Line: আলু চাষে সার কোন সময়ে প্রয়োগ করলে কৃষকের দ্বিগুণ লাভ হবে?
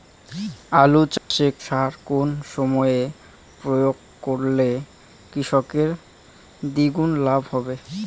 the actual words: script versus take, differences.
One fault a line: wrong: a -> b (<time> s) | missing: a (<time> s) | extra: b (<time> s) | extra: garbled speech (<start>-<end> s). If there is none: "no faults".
no faults